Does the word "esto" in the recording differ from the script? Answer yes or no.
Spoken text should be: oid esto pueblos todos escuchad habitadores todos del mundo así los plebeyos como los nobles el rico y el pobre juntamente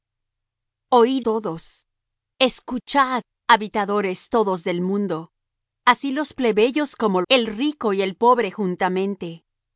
yes